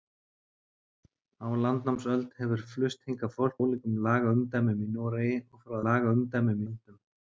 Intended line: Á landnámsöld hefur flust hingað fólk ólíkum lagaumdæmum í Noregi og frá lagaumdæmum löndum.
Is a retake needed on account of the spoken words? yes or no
no